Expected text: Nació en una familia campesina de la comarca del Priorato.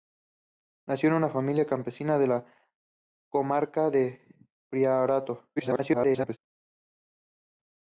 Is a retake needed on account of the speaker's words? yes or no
yes